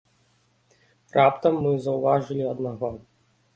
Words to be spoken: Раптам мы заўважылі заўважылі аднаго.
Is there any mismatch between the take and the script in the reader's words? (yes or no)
yes